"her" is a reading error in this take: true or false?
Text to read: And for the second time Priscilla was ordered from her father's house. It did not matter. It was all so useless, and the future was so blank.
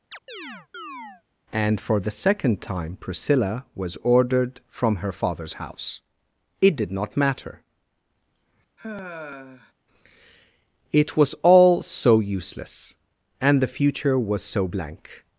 false